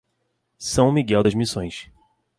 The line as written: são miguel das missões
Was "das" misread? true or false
false